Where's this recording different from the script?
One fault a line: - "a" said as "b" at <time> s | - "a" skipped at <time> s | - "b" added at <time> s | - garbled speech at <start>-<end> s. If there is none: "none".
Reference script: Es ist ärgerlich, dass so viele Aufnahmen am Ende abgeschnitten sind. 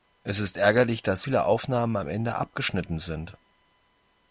- "so" skipped at 1.2 s